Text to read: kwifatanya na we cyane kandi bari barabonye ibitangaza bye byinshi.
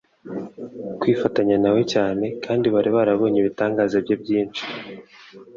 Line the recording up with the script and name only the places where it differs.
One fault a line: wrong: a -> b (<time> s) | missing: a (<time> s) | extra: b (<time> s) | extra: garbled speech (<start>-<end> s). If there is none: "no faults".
no faults